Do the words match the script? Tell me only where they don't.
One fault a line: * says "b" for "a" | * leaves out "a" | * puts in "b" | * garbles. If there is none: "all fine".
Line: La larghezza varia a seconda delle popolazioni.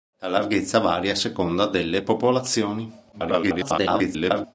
* garbles